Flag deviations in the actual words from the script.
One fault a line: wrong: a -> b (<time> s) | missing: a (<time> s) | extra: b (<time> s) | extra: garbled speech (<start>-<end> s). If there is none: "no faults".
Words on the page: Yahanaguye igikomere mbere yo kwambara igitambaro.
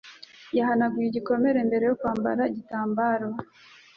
no faults